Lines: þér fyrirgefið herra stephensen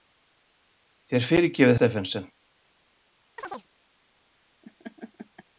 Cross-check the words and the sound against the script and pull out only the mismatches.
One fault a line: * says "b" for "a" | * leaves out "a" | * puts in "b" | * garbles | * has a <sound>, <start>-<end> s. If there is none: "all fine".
* leaves out "herra"
* has a chirp, 3.4-3.7 s
* has a laugh, 4.6-5.4 s